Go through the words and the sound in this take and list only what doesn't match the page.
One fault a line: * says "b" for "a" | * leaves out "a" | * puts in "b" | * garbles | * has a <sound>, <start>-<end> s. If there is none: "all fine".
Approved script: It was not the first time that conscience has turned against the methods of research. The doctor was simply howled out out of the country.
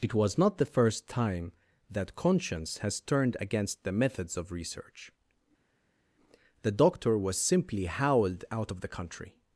* leaves out "out"